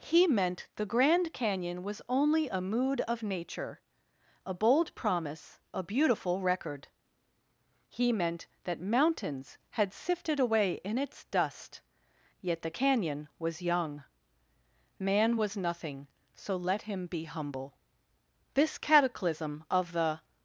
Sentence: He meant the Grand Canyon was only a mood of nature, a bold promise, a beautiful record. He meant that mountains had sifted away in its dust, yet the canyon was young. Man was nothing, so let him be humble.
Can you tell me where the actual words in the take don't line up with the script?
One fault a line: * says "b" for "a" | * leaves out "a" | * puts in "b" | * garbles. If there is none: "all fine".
* puts in "This cataclysm of the"